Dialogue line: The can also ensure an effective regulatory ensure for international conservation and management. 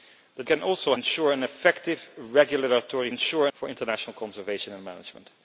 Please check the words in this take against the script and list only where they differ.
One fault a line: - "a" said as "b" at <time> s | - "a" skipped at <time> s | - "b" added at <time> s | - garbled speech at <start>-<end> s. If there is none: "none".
none